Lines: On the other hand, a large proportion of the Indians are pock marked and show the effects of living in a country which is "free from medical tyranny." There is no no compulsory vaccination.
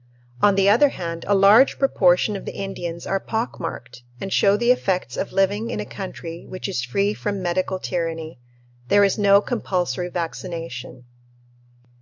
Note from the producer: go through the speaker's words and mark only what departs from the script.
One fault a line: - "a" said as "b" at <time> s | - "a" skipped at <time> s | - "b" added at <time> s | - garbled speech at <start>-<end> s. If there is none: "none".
- "no" skipped at 9.4 s